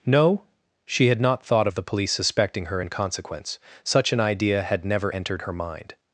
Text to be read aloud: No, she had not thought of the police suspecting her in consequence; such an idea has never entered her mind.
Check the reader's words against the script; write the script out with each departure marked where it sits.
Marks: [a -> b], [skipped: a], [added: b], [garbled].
No, she had not thought of the police suspecting her in consequence; such an idea [has -> had] never entered her mind.